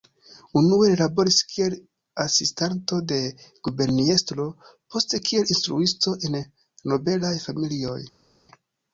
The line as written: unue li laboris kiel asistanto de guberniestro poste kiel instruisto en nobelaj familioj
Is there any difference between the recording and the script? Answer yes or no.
no